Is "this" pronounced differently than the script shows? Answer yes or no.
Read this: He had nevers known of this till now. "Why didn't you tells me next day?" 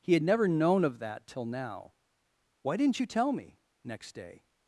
yes